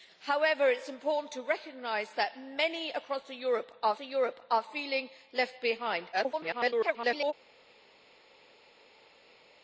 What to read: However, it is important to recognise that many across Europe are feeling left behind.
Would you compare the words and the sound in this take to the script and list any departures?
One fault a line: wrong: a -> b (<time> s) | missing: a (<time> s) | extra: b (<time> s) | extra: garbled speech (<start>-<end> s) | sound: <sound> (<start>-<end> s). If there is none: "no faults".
extra: Europe are (4.0 s)
extra: garbled speech (6.1-7.3 s)